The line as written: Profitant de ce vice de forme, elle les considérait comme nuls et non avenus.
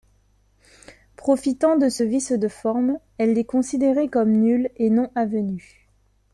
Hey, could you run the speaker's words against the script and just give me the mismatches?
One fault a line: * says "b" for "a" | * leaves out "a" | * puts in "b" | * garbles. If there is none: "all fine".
all fine